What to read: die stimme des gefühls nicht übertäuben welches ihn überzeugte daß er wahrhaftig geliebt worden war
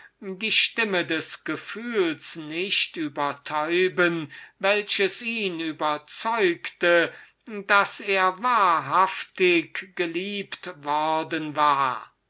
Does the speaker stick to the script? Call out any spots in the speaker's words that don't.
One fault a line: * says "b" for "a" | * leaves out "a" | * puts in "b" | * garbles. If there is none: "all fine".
all fine